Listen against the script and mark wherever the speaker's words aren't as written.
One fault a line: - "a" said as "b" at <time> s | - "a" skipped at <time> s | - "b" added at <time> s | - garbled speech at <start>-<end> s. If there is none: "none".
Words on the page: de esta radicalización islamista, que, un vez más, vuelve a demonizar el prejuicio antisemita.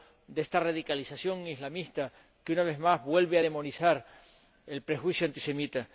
- "un" said as "una" at 2.5 s